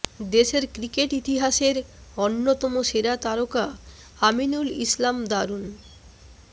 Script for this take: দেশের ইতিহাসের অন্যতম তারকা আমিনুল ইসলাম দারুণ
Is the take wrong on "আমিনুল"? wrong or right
right